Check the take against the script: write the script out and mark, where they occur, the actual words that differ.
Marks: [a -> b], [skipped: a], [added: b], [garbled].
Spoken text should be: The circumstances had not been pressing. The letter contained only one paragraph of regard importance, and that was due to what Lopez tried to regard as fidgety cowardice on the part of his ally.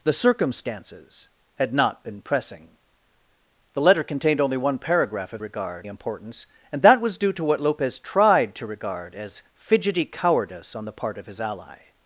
The circumstances had not been pressing. The letter contained only one paragraph of regard importance, and that was due to what Lopez tried to regard as fidgety cowardice on the part of his ally.